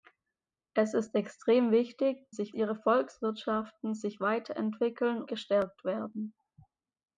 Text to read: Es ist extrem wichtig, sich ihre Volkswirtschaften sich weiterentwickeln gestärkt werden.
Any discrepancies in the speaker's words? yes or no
no